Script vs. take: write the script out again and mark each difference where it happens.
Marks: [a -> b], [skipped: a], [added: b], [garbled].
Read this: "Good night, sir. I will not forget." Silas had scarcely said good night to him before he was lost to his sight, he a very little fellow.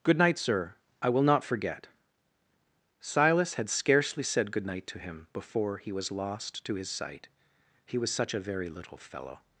"Good night, sir. I will not forget." Silas had scarcely said good night to him before he was lost to his sight, he [added: was such] a very little fellow.